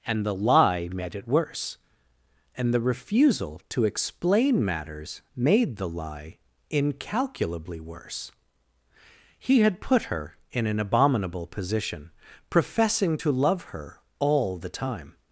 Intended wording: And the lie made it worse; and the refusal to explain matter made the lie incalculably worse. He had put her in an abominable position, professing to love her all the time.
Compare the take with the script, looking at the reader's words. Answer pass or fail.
fail